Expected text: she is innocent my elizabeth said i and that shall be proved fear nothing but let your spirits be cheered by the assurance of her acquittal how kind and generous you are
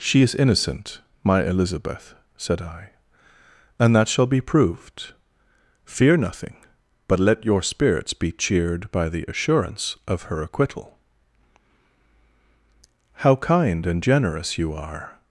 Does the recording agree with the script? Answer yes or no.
yes